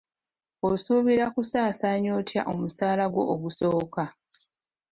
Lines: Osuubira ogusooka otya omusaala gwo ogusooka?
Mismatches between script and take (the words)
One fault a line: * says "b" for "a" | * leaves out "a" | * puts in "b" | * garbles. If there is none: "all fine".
* says "kusaasaanya" for "ogusooka"